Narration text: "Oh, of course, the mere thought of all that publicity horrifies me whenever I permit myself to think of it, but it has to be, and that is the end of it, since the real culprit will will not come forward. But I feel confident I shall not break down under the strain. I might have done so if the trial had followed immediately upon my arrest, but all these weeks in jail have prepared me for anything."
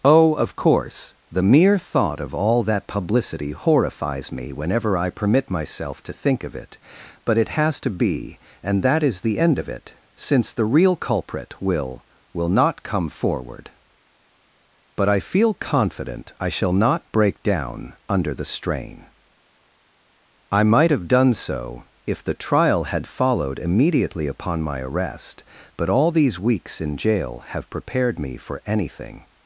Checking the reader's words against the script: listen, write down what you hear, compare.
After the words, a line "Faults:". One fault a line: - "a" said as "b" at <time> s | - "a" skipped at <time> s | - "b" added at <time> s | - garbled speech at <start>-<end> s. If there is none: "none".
"Oh, of course, the mere thought of all that publicity horrifies me whenever I permit myself to think of it, but it has to be, and that is the end of it, since the real culprit will will not come forward. But I feel confident I shall not break down under the strain. I might have done so if the trial had followed immediately upon my arrest, but all these weeks in jail have prepared me for anything."
Faults:
none